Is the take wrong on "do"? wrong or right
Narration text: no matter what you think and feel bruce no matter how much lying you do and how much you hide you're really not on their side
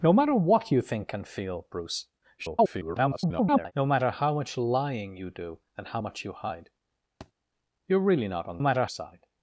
right